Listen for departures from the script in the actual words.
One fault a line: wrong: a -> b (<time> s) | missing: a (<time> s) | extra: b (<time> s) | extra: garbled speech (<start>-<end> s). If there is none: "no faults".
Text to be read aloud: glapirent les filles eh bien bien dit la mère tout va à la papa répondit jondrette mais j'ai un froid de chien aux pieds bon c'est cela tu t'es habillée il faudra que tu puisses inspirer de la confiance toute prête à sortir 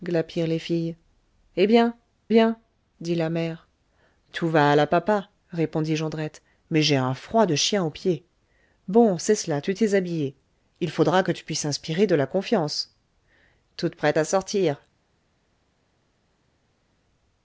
no faults